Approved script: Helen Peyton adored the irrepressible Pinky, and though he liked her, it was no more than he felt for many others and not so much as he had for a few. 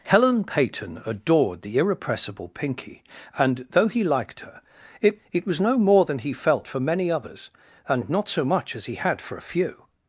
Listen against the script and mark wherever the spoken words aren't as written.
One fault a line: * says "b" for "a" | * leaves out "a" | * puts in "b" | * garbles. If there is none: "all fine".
* puts in "it"